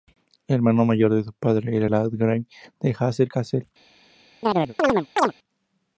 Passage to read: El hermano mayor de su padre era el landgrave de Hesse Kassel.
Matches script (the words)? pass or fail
fail